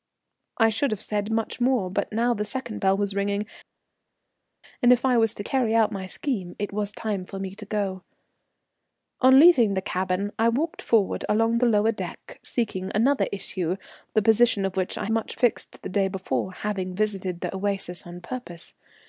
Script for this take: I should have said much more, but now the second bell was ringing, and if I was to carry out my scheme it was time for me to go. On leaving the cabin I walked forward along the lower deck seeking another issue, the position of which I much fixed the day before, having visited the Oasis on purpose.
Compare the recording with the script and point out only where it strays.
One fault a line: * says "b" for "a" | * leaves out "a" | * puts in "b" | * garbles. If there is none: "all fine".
all fine